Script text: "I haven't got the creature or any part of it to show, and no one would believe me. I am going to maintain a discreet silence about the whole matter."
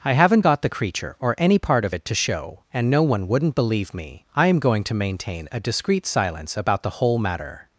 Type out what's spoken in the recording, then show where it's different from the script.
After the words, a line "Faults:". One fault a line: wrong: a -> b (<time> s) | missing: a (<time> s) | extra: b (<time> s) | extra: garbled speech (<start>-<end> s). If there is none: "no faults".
"I haven't got the creature or any part of it to show, and no one wouldn't believe me. I am going to maintain a discreet silence about the whole matter."
Faults:
wrong: would -> wouldn't (3.3 s)